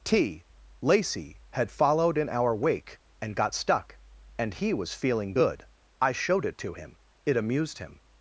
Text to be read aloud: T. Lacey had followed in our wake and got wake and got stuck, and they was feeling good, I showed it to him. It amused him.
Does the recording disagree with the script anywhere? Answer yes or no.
yes